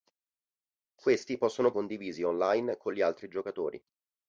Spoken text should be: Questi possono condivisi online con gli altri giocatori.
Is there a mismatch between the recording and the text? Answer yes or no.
no